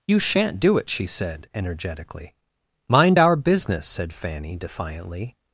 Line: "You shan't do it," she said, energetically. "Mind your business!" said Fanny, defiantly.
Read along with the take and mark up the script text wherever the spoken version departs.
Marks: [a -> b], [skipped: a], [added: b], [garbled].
"You shan't do it," she said, energetically. "Mind [your -> our] business!" said Fanny, defiantly.